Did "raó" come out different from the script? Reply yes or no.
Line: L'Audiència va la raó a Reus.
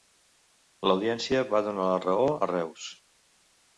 no